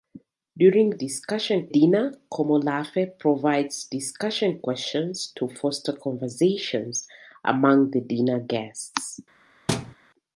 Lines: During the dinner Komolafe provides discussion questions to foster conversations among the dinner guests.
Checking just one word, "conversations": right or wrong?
right